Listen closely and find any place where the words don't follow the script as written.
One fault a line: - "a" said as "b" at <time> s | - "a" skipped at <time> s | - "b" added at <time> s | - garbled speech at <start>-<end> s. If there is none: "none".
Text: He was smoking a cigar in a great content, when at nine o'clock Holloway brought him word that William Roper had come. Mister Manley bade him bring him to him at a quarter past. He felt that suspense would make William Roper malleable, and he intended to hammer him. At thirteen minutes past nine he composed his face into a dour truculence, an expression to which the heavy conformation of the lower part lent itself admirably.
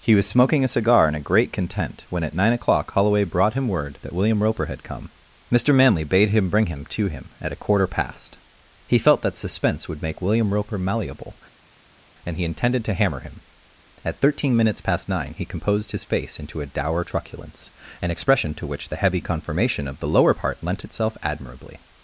none